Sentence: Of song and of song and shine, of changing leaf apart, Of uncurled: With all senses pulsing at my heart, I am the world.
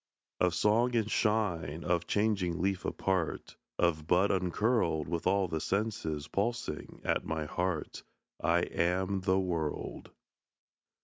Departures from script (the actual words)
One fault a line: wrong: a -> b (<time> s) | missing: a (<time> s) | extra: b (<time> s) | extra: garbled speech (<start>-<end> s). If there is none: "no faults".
missing: of song and (1.1 s)
extra: bud (4.1 s)
extra: the (5.5 s)